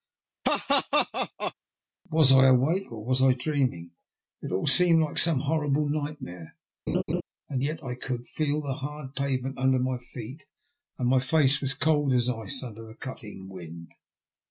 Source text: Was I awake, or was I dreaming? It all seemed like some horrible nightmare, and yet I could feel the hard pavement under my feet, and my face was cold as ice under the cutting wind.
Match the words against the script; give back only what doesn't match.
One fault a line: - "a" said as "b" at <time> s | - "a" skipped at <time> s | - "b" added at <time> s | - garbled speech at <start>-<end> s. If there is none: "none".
none